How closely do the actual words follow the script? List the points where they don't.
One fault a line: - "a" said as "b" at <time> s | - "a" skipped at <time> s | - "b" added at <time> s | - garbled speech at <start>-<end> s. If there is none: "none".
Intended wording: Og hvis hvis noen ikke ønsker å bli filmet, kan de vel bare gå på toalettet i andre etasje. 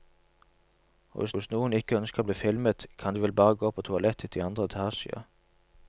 none